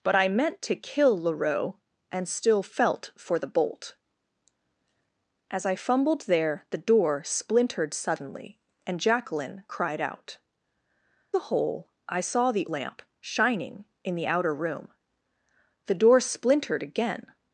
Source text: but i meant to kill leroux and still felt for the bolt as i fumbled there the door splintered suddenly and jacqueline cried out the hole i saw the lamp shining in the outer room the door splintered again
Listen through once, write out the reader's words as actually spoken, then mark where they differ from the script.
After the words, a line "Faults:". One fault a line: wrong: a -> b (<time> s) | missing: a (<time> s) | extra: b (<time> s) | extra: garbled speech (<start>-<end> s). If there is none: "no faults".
but i meant to kill leroux and still felt for the bolt as i fumbled there the door splintered suddenly and jacqueline cried out the hole i saw the lamp shining in the outer room the door splintered again
Faults:
no faults